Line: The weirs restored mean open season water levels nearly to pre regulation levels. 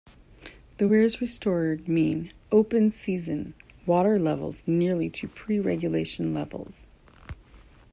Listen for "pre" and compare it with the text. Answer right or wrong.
right